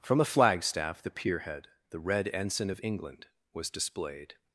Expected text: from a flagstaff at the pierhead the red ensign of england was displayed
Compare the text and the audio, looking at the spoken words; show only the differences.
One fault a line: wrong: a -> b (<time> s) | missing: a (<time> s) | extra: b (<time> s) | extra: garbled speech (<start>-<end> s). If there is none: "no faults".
missing: at (1.0 s)